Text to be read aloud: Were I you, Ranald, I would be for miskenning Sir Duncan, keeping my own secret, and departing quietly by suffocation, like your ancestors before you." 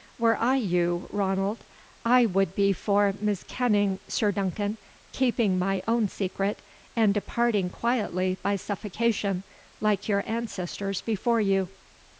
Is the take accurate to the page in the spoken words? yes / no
yes